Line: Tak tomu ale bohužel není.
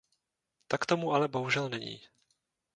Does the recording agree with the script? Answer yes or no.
yes